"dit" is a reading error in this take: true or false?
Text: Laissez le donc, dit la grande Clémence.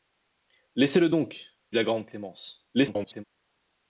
true